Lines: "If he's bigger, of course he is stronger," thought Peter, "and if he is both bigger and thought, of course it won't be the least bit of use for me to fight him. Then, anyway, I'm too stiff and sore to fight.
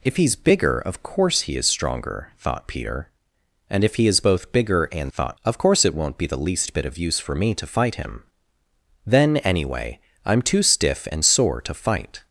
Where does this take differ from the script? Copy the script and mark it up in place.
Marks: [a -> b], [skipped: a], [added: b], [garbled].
"If he's bigger, of course he is stronger," thought Peter, "and if he is both bigger and thought, of course it won't be the least bit of use for me to fight him. Then, anyway, I'm too stiff and sore to fight.